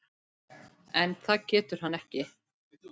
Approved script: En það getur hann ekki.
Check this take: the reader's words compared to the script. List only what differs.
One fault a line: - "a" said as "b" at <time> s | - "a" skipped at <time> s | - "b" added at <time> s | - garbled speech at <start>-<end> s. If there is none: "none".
none